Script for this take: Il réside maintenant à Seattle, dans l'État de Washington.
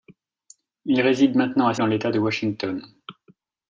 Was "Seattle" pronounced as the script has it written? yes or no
no